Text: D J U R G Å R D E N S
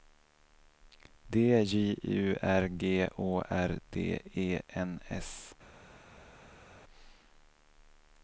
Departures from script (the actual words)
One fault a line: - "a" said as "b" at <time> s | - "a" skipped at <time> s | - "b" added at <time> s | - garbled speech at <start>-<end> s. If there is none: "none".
none